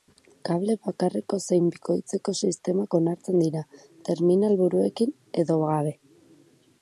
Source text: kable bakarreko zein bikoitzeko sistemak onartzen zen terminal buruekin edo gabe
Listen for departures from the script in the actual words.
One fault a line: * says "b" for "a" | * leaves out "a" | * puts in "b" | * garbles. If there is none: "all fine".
* says "dira" for "zen"